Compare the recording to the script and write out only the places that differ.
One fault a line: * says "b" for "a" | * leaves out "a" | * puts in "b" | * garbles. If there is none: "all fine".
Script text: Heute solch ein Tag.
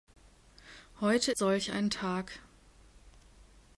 all fine